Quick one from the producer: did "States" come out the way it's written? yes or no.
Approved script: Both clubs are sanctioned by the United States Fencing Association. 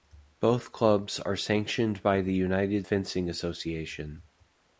no